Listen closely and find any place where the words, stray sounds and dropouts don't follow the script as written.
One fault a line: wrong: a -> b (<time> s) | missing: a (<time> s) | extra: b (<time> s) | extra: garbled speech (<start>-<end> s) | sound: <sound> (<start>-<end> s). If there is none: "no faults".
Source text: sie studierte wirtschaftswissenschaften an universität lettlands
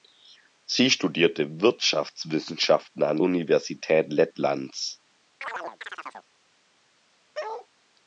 sound: chirp (5.4-6.3 s)
sound: bark (7.3-7.7 s)